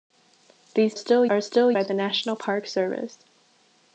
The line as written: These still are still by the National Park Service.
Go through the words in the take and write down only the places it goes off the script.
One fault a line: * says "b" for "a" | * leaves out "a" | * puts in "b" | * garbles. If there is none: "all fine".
all fine